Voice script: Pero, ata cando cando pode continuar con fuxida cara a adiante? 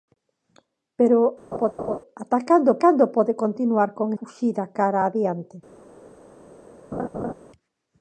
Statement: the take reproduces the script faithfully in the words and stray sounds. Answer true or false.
false